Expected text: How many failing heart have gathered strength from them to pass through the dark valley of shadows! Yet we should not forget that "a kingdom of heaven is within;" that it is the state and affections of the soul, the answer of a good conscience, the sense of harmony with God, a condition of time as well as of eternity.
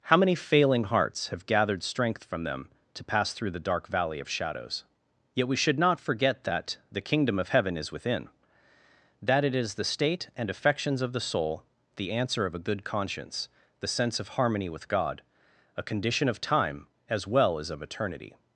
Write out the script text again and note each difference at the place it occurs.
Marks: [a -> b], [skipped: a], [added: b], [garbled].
How many failing [heart -> hearts] have gathered strength from them to pass through the dark valley of shadows! Yet we should not forget that ["a -> the] kingdom of heaven is within;" that it is the state and affections of the soul, the answer of a good conscience, the sense of harmony with God, a condition of time as well as of eternity.